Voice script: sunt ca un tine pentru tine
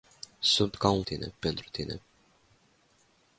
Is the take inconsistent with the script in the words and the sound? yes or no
no